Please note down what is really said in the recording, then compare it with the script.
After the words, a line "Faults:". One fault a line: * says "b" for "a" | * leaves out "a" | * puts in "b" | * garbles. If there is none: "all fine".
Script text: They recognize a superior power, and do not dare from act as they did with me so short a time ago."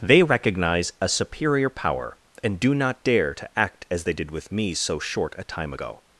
They recognize a superior power, and do not dare to act as they did with me so short a time ago."
Faults:
* says "to" for "from"